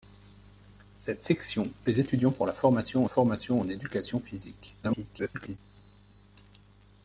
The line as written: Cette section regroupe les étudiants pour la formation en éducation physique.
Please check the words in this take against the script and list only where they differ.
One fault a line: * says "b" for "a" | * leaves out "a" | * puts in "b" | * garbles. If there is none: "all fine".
* leaves out "regroupe"
* puts in "formation"
* garbles